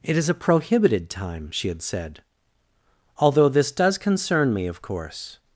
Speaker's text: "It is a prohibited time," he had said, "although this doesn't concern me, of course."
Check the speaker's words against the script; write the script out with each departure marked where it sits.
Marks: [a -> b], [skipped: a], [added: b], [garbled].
"It is a prohibited time," [he -> she] had said, "although this [doesn't -> does] concern me, of course."